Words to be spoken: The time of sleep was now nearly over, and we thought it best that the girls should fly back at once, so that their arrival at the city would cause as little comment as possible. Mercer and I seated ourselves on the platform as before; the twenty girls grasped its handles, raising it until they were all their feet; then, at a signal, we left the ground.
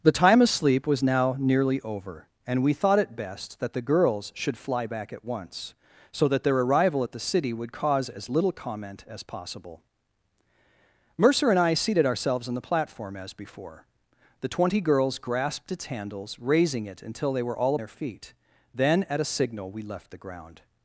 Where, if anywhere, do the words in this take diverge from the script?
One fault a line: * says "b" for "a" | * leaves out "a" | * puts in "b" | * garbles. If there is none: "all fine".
all fine